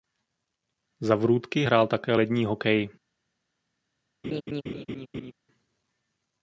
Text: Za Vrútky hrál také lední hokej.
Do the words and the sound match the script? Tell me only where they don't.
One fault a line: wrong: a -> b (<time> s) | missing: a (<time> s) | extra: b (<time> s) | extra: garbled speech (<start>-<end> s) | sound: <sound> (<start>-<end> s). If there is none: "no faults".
sound: laugh (4.2-5.3 s)